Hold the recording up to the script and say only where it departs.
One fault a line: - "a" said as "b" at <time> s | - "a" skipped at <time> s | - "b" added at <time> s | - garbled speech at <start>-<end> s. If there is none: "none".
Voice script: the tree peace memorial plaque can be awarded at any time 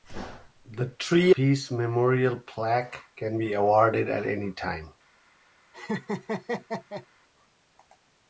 none